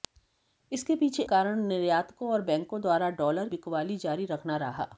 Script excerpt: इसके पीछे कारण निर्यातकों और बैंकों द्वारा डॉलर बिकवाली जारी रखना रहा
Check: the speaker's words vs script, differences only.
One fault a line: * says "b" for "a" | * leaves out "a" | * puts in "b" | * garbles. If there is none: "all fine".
all fine